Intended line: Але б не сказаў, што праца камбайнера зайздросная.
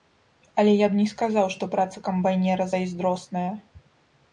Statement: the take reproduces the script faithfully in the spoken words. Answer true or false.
false